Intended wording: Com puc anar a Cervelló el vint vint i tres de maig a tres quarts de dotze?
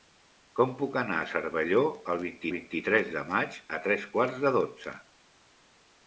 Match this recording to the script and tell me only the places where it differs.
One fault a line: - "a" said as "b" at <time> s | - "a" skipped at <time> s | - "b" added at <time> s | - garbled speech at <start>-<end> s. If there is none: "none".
none